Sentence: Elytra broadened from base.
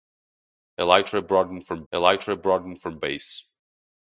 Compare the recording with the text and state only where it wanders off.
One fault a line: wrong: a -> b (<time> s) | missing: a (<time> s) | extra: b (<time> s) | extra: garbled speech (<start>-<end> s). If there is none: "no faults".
extra: elytra broadened from (1.9 s)